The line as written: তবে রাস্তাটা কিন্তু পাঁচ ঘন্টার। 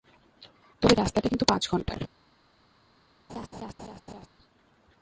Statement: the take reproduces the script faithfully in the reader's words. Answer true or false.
true